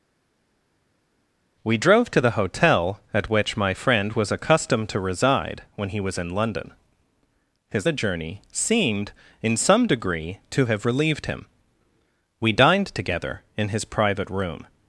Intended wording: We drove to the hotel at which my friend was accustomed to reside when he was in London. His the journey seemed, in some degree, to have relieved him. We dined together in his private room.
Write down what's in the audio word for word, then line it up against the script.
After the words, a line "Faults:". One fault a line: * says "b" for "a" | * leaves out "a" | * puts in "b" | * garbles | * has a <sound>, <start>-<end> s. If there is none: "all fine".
We drove to the hotel at which my friend was accustomed to reside when he was in London. His the journey seemed, in some degree, to have relieved him. We dined together in his private room.
Faults:
all fine